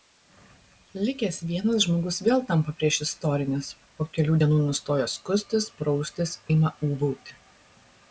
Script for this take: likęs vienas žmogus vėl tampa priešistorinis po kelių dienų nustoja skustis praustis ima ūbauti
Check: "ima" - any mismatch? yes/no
no